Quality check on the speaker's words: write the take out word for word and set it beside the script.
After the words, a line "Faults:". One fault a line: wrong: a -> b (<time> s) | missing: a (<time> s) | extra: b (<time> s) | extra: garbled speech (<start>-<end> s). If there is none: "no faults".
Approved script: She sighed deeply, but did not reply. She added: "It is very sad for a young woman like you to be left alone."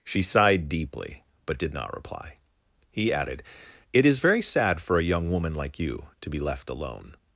She sighed deeply, but did not reply. He added: "It is very sad for a young woman like you to be left alone."
Faults:
wrong: She -> He (2.9 s)